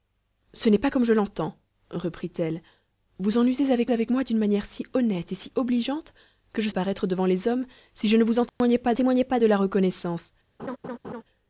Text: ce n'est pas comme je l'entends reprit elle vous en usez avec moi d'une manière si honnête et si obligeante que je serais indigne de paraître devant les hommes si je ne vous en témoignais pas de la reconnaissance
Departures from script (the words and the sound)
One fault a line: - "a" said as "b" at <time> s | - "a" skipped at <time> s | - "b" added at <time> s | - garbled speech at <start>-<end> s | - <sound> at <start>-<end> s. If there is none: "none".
- "avec" added at 3.9 s
- "serais indigne de" skipped at 6.7 s
- dropout at 8.5-8.6 s
- "témoignais pas" added at 8.9 s
- laugh at 10.6-11.2 s